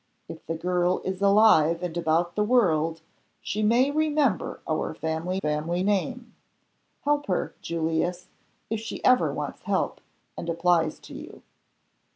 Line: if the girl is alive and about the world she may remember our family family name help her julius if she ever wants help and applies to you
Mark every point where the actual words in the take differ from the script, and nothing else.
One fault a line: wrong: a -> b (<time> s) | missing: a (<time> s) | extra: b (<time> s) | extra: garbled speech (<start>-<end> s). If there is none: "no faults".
no faults